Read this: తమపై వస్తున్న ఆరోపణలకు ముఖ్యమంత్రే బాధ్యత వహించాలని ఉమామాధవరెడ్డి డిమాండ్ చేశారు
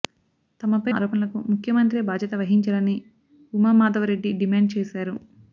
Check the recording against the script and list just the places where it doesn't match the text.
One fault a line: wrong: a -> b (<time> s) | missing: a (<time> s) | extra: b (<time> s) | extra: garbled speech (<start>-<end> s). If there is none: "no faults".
missing: వస్తున్న (0.9 s)